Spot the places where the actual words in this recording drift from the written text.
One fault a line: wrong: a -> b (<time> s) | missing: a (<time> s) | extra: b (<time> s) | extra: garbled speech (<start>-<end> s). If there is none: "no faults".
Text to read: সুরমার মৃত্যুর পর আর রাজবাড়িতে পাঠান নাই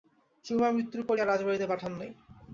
no faults